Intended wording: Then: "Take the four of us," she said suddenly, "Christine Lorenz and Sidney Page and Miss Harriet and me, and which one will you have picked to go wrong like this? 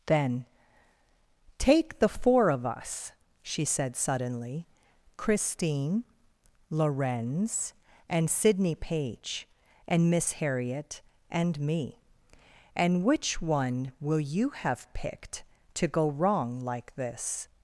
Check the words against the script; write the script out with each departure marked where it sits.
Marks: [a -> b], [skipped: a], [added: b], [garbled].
Then: "Take the four of us," she said suddenly, "Christine Lorenz and Sidney Page and Miss Harriet and me, and which one will you have picked to go wrong like this?